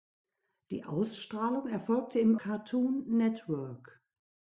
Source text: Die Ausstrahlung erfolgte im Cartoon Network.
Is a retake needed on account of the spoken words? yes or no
no